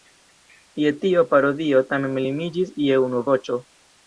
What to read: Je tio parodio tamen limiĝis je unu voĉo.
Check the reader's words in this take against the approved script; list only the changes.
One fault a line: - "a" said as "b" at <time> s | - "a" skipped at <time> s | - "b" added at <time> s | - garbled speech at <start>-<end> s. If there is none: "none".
none